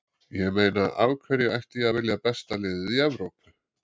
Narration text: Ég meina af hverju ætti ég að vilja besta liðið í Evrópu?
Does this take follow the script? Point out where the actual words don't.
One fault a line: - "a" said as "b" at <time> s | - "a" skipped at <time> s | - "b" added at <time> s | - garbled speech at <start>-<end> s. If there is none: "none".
none